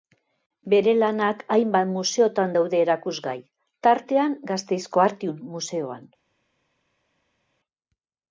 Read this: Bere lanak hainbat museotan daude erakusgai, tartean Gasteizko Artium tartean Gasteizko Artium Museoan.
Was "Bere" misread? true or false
false